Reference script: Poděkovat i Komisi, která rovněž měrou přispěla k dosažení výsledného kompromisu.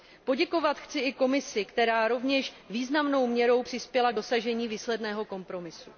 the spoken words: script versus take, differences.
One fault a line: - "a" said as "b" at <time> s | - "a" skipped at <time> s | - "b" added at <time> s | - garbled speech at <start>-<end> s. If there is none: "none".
- "chci" added at 0.8 s
- "významnou" added at 2.7 s